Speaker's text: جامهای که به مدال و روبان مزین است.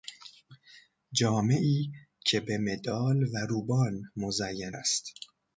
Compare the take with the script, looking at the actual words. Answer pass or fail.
pass